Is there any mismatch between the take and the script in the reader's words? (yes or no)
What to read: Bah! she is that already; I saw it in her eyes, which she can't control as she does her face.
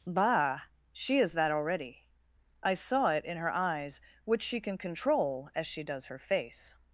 yes